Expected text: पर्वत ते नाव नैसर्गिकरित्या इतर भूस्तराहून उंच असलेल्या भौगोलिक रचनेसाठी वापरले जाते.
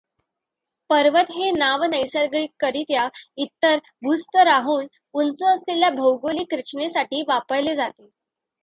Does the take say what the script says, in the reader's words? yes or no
no